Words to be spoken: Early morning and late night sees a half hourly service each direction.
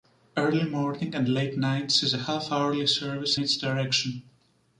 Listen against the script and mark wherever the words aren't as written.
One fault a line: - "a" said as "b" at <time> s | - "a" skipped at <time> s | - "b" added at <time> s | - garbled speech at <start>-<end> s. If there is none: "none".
none